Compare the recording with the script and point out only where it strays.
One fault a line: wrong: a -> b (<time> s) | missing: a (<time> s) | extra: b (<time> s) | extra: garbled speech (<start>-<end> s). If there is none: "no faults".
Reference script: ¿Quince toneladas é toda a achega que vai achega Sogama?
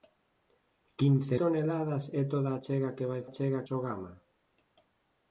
no faults